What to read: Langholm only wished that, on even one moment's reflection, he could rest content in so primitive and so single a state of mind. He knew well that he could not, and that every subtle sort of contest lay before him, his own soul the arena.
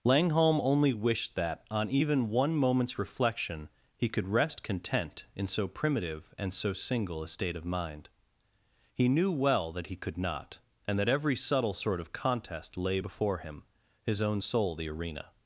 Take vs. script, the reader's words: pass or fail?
pass